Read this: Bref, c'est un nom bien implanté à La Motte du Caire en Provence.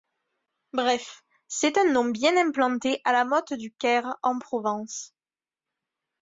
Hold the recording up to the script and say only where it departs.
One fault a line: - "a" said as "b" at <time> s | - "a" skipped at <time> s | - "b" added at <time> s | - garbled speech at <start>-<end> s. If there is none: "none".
none